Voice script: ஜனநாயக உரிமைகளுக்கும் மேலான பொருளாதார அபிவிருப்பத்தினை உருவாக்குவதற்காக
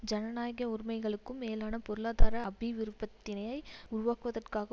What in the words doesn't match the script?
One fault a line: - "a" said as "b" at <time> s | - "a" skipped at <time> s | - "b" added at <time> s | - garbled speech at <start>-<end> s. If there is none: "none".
none